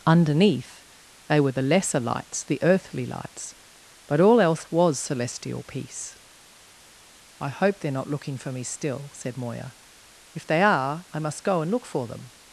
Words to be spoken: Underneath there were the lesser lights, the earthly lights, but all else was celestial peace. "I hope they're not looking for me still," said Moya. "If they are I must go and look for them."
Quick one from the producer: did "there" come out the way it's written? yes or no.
no